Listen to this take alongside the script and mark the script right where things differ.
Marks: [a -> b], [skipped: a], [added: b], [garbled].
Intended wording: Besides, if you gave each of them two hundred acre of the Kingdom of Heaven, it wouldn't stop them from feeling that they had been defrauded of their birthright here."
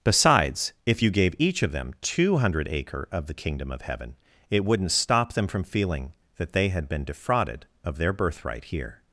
Besides, if you gave each of them two hundred acre of the Kingdom of Heaven, it wouldn't stop them from feeling that they had been defrauded of their birthright here."